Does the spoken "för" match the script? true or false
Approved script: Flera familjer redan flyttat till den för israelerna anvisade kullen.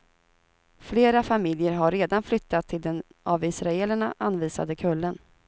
false